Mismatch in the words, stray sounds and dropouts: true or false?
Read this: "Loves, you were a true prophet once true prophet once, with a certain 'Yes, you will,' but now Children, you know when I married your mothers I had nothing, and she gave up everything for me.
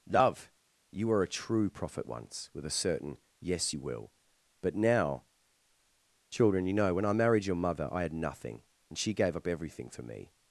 true